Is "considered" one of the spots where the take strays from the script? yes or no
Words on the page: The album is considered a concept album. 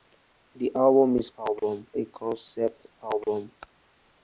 yes